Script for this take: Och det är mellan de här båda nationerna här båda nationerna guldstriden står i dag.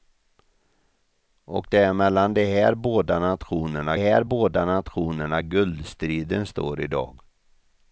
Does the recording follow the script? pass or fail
pass